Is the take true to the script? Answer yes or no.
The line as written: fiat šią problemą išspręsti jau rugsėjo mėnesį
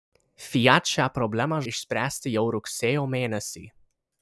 yes